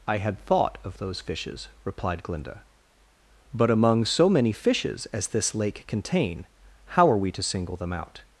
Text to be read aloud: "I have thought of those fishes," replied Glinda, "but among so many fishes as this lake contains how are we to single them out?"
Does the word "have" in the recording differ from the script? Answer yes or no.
yes